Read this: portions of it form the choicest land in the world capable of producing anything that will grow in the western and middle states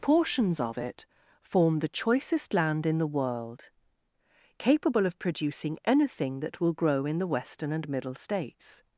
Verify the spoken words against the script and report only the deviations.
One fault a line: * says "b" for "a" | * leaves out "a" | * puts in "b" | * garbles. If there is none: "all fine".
all fine